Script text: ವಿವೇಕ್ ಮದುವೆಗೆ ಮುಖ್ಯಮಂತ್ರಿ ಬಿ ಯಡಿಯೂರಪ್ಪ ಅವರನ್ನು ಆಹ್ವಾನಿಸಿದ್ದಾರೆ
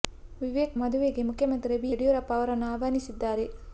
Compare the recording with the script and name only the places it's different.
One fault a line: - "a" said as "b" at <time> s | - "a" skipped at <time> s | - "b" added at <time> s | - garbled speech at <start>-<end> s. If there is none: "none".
none